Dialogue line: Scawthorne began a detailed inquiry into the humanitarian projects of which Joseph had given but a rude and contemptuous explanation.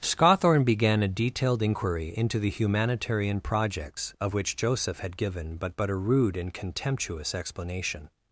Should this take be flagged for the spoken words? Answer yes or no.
yes